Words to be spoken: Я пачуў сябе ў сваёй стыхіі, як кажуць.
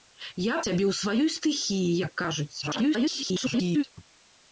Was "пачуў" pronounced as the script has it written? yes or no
no